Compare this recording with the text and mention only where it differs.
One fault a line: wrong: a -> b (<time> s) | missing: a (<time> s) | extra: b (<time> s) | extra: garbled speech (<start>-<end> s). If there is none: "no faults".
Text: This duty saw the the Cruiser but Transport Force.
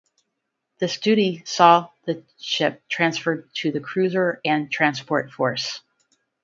extra: ship transferred to (2.4 s)
wrong: but -> and (4.4 s)